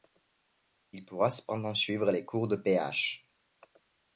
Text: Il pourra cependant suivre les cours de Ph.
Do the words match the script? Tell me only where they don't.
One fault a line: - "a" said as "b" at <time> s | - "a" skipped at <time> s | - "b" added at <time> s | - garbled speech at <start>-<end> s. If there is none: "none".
none